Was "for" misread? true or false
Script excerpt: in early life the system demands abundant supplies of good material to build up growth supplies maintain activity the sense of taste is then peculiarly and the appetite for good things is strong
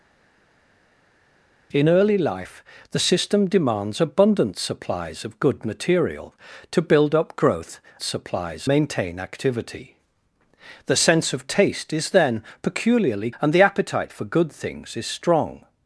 false